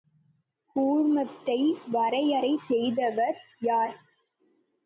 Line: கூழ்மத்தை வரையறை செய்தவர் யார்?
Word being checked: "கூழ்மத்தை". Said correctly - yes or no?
yes